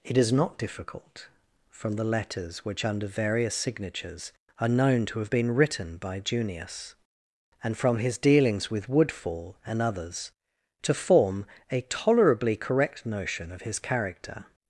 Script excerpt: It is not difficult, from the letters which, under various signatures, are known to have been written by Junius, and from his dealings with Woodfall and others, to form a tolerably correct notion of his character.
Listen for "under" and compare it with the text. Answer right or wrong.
right